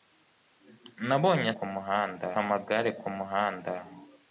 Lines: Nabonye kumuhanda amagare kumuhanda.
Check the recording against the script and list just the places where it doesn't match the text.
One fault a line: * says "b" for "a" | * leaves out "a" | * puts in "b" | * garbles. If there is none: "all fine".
all fine